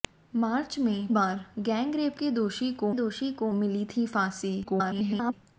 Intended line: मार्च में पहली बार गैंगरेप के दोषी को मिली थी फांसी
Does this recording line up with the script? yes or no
no